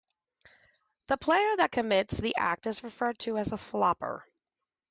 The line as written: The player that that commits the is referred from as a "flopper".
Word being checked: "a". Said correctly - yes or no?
yes